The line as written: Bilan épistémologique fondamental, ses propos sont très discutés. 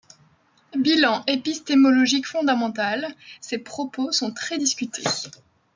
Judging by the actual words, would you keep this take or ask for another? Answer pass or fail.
pass